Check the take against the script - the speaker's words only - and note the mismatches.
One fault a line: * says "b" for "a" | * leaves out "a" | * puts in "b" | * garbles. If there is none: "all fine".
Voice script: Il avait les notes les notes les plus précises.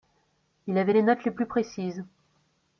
* leaves out "notes les"